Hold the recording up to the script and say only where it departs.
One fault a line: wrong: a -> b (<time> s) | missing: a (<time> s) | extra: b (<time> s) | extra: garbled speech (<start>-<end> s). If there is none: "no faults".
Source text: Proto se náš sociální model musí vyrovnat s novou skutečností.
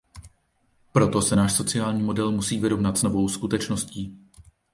no faults